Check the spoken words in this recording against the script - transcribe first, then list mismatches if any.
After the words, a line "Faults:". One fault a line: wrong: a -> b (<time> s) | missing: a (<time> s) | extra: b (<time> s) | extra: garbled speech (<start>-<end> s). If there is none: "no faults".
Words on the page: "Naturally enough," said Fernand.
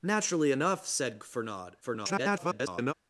"Naturally enough," said Fernand. [garbled]
Faults:
extra: garbled speech (1.8-2.9 s)